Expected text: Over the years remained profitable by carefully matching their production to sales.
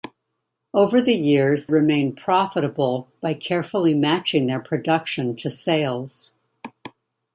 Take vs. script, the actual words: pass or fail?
pass